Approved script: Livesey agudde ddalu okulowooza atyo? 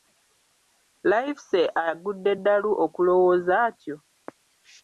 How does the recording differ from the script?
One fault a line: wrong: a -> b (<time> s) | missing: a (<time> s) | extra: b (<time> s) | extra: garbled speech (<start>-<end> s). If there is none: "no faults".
no faults